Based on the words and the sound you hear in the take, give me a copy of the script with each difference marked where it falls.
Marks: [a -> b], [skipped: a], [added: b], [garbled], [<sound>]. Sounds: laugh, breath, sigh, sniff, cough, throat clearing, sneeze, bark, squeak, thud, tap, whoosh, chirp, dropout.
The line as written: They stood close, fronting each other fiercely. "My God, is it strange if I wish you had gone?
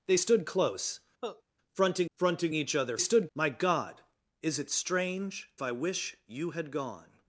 They stood close, [cough] fronting [added: fronting] each other [fiercely. -> stood] "My God, is it strange [skipped: if] I wish you had gone?